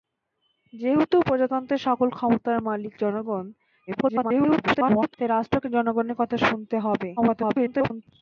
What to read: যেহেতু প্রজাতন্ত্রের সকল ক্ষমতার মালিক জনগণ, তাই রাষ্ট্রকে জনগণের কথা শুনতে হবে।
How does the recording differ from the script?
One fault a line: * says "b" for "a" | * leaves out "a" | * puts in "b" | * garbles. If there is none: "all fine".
* garbles
* garbles